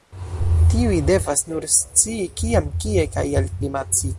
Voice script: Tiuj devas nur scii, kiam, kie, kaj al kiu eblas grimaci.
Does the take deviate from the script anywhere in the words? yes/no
yes